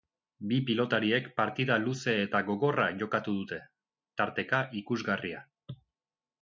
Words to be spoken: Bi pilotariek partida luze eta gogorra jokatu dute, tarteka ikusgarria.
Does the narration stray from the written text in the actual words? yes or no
no